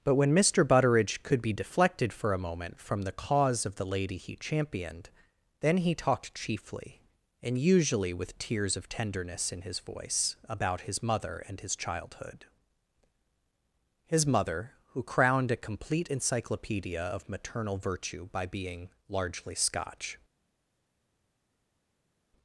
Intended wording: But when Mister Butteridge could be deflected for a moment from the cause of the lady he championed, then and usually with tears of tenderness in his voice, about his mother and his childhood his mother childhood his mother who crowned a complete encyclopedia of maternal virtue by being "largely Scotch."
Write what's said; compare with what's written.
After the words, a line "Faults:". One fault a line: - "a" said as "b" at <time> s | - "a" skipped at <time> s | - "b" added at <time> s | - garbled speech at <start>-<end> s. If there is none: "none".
But when Mister Butteridge could be deflected for a moment from the cause of the lady he championed, then he talked chiefly, and usually with tears of tenderness in his voice, about his mother and his childhood his mother who crowned a complete encyclopedia of maternal virtue by being "largely Scotch."
Faults:
- "he talked chiefly" added at 5.8 s
- "childhood his mother" skipped at 14.7 s